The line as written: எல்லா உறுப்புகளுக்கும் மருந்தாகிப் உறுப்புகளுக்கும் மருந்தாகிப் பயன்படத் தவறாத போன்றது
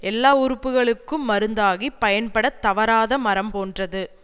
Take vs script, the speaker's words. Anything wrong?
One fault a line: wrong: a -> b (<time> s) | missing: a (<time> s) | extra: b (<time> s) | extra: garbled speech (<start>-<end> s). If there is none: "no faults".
missing: உறுப்புகளுக்கும் மருந்தாகிப் (2.0 s)
extra: மரம் (3.2 s)